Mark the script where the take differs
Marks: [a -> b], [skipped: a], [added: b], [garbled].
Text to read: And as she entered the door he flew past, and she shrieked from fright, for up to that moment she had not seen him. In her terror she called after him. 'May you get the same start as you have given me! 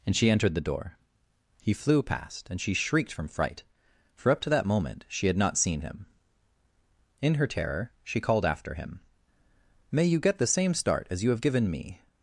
And [skipped: as] she entered the door he flew past, and she shrieked from fright, for up to that moment she had not seen him. In her terror she called after him. 'May you get the same start as you have given me!